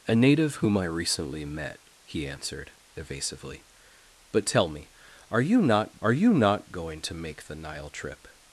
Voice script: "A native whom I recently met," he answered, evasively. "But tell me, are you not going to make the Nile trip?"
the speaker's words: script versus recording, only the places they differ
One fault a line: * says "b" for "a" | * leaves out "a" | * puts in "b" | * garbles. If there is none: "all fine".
* puts in "are you not"